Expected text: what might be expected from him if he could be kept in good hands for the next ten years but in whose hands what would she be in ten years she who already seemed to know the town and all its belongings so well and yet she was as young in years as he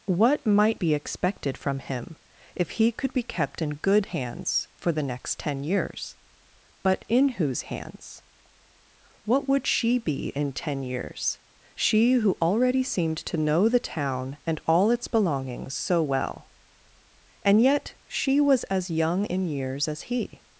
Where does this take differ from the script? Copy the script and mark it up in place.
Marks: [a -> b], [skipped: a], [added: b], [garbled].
what might be expected from him if he could be kept in good hands for the next ten years but in whose hands what would she be in ten years she who already seemed to know the town and all its belongings so well and yet she was as young in years as he